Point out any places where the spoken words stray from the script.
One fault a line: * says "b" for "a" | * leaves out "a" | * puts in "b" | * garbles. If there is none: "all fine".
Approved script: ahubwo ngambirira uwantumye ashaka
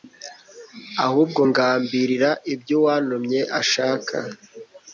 * puts in "ibyo"